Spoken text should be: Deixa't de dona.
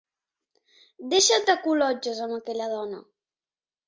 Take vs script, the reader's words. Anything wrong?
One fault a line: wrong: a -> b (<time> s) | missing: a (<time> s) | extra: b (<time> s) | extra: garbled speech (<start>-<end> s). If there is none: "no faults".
extra: col·lotges amb aquella (1.6 s)